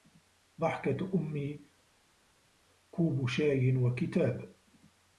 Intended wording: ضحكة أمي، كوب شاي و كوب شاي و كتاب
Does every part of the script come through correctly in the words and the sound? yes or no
no